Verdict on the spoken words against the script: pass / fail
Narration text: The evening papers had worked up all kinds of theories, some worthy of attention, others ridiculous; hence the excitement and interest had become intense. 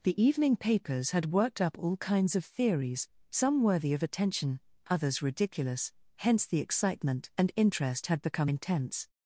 pass